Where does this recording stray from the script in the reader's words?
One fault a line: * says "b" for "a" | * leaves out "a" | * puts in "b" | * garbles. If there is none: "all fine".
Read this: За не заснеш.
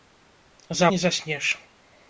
all fine